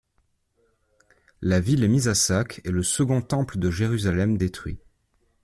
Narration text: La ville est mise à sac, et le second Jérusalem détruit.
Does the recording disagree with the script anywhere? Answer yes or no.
yes